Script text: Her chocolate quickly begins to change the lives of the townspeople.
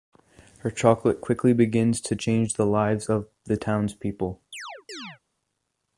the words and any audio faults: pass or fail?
fail